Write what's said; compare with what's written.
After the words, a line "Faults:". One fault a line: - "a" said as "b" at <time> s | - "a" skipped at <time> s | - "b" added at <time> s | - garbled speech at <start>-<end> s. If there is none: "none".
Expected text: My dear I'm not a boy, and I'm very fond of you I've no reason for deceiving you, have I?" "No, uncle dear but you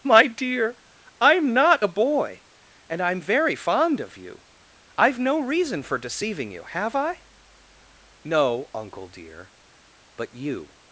My dear I'm not a boy, and I'm very fond of you I've no reason for deceiving you, have I?" "No, uncle dear but you
Faults:
none